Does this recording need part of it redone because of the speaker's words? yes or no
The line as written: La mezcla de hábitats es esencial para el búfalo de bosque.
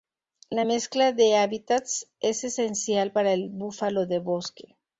no